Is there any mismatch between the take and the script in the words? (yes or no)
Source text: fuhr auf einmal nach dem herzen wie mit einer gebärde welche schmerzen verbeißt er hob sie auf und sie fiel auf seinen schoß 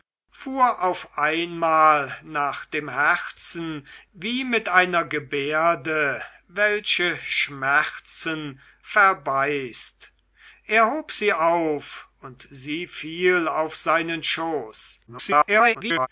yes